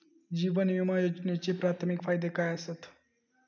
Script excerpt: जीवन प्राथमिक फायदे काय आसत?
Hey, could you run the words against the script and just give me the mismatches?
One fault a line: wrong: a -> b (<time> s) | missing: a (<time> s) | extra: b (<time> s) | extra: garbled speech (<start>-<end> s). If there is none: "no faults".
extra: विमा योजनेचे (0.7 s)